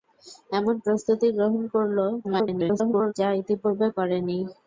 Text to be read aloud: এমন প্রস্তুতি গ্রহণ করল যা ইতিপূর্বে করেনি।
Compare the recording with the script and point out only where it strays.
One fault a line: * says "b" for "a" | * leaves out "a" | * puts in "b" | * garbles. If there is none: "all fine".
* garbles